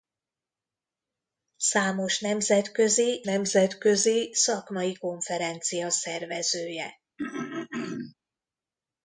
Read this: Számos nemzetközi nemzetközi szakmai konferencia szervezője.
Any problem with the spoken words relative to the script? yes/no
no